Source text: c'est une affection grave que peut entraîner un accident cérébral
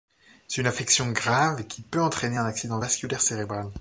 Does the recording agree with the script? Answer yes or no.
no